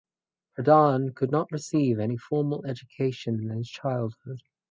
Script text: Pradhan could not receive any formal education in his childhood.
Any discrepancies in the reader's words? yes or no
no